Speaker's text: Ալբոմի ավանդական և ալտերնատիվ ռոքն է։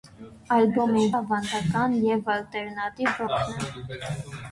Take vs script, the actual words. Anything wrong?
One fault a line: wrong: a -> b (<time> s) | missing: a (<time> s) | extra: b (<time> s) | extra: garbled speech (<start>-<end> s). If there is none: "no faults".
no faults